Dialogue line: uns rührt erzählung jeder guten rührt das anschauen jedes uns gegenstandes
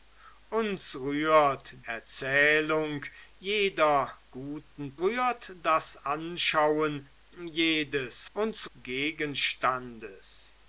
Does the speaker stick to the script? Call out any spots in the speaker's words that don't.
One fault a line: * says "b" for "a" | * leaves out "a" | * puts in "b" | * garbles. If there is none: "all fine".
all fine